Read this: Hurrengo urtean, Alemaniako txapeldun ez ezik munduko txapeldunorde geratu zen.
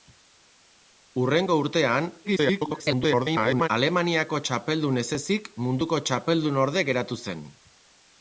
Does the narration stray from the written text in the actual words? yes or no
yes